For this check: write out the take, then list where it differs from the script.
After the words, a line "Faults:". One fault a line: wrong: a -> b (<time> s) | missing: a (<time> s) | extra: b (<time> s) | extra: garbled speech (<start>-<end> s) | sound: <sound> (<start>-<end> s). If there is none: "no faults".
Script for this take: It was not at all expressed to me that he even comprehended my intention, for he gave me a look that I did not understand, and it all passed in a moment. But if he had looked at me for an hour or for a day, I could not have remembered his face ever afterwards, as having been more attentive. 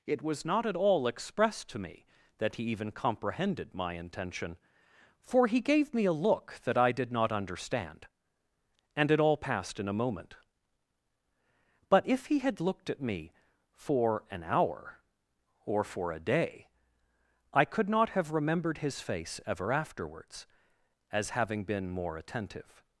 It was not at all expressed to me that he even comprehended my intention, for he gave me a look that I did not understand, and it all passed in a moment. But if he had looked at me for an hour or for a day, I could not have remembered his face ever afterwards, as having been more attentive.
Faults:
no faults